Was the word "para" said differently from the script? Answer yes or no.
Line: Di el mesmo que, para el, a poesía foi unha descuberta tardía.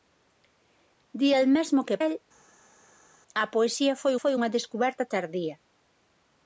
yes